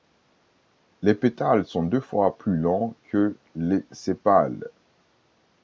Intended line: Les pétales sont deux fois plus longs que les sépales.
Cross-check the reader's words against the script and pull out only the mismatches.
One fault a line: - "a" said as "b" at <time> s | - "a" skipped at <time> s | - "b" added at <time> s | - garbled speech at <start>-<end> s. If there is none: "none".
none